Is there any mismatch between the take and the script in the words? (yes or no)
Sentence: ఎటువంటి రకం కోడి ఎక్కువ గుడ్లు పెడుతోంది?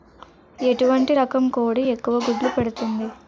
no